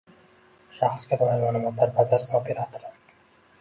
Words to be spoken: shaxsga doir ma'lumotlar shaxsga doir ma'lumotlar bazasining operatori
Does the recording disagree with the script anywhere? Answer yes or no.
yes